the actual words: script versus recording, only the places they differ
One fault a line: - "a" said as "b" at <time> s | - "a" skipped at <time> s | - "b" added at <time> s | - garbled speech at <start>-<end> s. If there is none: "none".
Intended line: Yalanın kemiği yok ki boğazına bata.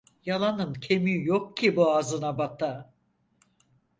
none